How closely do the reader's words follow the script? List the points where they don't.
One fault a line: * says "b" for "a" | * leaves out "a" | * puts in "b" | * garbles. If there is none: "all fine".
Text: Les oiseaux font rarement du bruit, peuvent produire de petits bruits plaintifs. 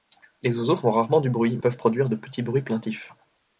all fine